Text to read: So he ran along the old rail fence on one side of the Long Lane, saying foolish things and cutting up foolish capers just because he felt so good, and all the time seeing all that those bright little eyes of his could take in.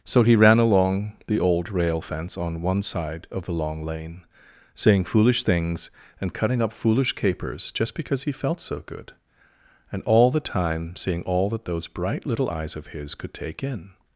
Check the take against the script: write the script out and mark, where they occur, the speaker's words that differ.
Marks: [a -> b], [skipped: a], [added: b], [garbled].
So he ran along the old rail fence on one side of the Long Lane, saying foolish things and cutting up foolish capers just because he felt so good, and all the time seeing all that those bright little eyes of his could take in.